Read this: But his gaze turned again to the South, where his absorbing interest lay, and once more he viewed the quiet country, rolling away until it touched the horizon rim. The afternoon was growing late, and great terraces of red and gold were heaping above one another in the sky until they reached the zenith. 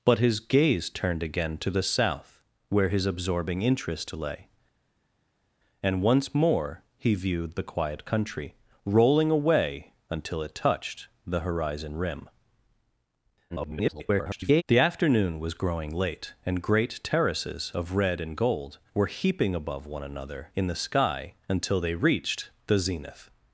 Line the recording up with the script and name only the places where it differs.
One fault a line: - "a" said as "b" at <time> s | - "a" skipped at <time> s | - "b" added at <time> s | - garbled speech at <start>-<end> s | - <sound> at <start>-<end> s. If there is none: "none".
- garbled speech at 13.5-14.6 s